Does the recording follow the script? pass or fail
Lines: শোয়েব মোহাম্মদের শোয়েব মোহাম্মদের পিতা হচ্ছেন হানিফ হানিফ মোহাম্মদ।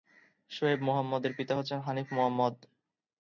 fail